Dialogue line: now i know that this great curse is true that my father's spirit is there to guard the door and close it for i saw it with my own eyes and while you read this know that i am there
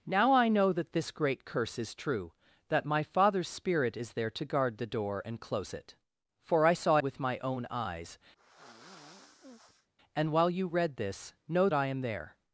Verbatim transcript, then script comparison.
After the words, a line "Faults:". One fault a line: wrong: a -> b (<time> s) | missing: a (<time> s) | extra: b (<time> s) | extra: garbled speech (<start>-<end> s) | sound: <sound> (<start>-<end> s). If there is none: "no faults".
now i know that this great curse is true that my father's spirit is there to guard the door and close it for i saw with my own eyes and while you read this know i am there
Faults:
missing: it (7.0 s)
sound: sigh (8.4-9.9 s)
missing: that (11.7 s)